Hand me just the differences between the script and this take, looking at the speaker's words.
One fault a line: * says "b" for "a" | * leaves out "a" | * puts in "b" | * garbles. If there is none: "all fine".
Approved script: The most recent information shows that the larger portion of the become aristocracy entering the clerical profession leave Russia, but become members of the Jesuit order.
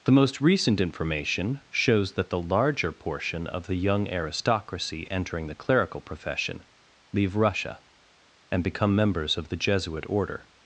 * says "young" for "become"
* says "and" for "but"